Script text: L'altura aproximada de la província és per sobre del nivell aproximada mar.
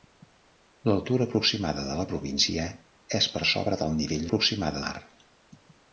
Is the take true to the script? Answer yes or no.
yes